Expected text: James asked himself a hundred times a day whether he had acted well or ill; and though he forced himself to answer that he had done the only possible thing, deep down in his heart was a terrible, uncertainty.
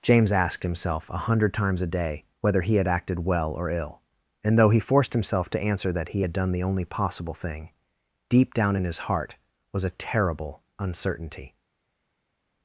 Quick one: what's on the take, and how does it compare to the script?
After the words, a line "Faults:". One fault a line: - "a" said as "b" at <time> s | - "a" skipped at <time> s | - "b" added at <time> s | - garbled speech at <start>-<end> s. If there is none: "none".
James asked himself a hundred times a day whether he had acted well or ill; and though he forced himself to answer that he had done the only possible thing, deep down in his heart was a terrible, uncertainty.
Faults:
none